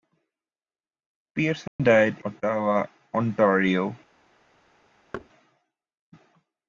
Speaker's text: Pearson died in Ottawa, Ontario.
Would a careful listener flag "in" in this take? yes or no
yes